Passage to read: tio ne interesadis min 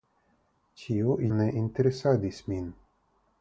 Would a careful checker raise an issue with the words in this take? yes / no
no